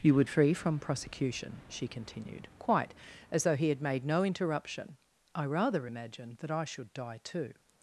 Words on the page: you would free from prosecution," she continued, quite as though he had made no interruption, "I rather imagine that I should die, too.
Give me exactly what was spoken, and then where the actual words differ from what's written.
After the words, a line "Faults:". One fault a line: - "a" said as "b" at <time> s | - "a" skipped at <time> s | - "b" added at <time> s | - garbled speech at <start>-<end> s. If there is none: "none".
you would free from prosecution," she continued, quite as though he had made no interruption, "I rather imagine that I should die, too.
Faults:
none